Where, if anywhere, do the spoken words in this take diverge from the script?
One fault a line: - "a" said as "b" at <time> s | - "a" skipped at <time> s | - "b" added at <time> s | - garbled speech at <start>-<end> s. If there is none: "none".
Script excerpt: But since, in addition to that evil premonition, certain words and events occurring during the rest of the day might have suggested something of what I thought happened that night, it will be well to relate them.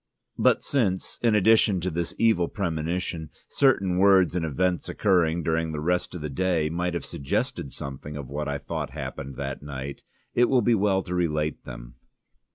- "that" said as "this" at 1.9 s